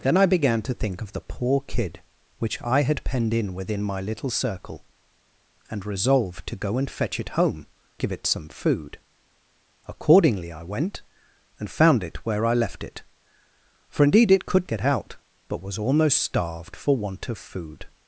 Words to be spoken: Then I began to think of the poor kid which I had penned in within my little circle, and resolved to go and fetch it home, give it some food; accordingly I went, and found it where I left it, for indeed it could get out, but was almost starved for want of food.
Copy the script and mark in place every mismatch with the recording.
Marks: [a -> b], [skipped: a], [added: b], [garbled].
Then I began to think of the poor kid which I had penned in within my little circle, and resolved to go and fetch it home, give it some food; accordingly I went, and found it where I left it, for indeed it could get out, but was almost starved for want of food.